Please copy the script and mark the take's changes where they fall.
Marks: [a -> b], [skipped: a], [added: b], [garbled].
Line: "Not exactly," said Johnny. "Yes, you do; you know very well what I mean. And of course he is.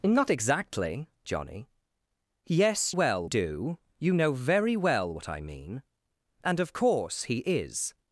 "Not exactly," [skipped: said] Johnny. "Yes, [you -> well] do; you know very well what I mean. And of course he is.